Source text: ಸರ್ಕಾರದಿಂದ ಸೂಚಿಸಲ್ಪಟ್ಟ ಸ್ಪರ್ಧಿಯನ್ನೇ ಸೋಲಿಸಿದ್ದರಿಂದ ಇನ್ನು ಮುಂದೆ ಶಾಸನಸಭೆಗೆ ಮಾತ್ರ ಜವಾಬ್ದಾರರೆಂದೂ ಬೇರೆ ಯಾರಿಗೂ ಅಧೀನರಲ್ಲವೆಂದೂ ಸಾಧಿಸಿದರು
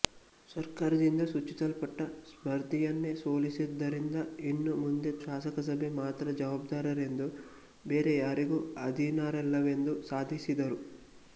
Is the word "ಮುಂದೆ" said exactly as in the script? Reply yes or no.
yes